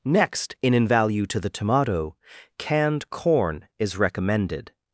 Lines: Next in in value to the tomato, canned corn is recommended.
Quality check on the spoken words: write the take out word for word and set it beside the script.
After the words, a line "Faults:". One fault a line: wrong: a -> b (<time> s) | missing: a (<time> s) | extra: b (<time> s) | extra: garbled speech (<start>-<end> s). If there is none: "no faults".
Next in in value to the tomato, canned corn is recommended.
Faults:
no faults